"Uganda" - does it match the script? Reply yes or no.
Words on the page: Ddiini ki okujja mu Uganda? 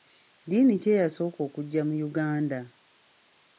yes